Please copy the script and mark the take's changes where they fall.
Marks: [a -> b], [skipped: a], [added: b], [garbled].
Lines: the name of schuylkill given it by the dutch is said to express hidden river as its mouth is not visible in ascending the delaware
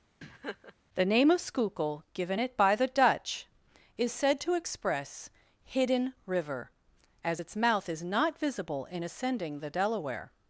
the name of schuylkill given it by the dutch is said to express hidden river as its mouth is not visible in ascending the delaware